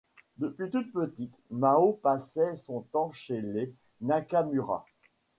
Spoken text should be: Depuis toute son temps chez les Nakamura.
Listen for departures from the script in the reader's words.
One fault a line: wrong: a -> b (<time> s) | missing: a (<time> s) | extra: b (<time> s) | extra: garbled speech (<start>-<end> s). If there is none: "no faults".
extra: petite Mao passait (0.9 s)